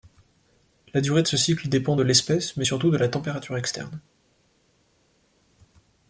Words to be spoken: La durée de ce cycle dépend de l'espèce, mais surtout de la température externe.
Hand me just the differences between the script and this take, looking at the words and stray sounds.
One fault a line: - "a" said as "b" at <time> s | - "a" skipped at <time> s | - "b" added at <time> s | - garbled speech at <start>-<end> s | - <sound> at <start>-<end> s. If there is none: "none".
none